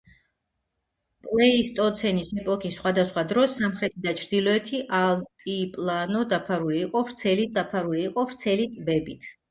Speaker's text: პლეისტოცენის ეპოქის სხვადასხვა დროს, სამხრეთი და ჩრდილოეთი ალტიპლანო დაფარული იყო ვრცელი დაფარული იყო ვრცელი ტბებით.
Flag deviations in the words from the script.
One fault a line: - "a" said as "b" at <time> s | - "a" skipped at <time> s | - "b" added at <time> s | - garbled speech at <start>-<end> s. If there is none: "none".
none